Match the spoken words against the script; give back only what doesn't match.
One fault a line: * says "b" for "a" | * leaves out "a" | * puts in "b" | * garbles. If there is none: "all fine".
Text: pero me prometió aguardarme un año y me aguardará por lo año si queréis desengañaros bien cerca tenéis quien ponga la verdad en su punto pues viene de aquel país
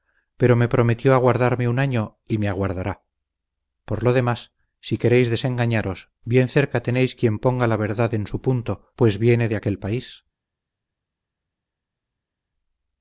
* says "demás" for "año"